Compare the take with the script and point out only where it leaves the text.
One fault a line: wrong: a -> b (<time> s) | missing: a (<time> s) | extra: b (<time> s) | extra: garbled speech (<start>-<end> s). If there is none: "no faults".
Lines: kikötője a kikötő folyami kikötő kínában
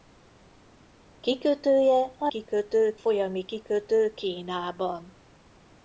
no faults